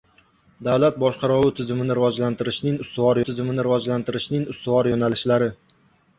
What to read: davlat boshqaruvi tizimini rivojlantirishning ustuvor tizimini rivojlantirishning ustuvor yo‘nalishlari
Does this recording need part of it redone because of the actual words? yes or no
no